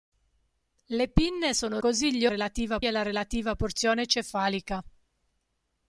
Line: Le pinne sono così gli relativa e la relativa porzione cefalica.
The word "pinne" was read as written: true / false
true